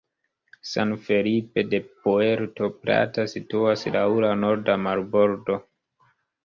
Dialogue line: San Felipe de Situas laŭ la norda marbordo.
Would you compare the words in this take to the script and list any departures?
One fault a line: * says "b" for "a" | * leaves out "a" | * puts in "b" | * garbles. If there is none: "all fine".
* puts in "Puerto Plata"